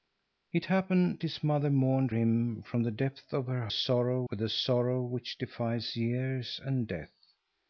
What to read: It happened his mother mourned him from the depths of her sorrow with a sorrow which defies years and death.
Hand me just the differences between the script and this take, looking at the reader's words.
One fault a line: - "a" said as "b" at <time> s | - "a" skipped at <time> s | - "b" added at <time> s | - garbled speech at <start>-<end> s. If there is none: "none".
none